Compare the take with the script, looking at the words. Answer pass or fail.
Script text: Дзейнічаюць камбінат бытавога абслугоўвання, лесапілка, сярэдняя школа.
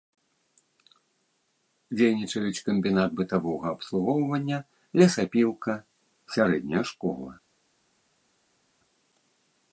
pass